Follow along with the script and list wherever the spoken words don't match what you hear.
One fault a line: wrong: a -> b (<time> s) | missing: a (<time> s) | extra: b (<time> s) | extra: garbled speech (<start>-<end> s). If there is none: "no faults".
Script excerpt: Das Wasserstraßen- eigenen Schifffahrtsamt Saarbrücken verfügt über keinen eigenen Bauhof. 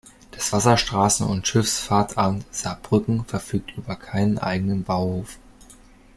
wrong: eigenen -> und (1.3 s)